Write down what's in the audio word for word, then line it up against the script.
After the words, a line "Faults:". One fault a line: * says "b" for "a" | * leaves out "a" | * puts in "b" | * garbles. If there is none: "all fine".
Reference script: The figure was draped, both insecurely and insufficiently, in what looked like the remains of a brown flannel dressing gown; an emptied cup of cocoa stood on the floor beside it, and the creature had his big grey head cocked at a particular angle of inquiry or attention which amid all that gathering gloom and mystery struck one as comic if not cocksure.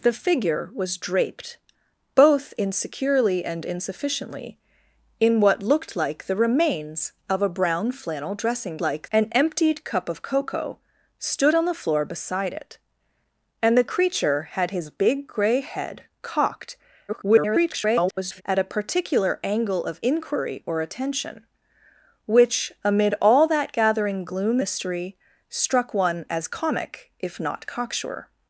The figure was draped, both insecurely and insufficiently, in what looked like the remains of a brown flannel dressing like; an emptied cup of cocoa stood on the floor beside it, and the creature had his big grey head cocked [garbled] at a particular angle of inquiry or attention which amid all that gathering gloom mystery struck one as comic if not cocksure.
Faults:
* says "like" for "gown"
* garbles
* leaves out "and"